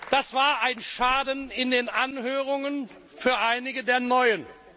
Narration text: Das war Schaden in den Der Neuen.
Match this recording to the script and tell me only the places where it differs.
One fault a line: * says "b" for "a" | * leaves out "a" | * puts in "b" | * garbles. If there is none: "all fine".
* puts in "ein"
* puts in "Anhörungen für einige"